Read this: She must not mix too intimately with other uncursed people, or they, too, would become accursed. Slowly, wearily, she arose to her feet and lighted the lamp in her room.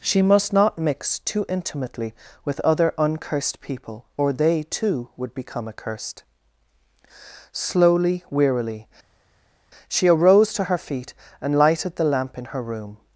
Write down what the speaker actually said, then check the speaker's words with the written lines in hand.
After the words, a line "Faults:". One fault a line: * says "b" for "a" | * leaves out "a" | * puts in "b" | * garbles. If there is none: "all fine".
She must not mix too intimately with other uncursed people, or they, too, would become accursed. Slowly, wearily, she arose to her feet and lighted the lamp in her room.
Faults:
all fine